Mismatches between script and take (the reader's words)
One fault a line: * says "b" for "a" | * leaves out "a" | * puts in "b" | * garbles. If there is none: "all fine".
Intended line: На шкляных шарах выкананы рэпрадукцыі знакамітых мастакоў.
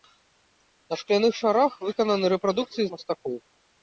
* leaves out "знакамітых"